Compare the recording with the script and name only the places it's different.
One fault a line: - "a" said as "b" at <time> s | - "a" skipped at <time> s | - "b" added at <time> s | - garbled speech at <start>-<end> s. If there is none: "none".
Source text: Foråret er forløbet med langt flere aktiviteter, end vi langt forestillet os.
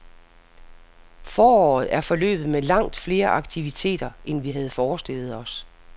- "langt" said as "havde" at 4.5 s